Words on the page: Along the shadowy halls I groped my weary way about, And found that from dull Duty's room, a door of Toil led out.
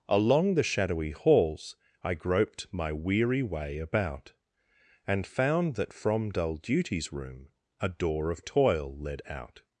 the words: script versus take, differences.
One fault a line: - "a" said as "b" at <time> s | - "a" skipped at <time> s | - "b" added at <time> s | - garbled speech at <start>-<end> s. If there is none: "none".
none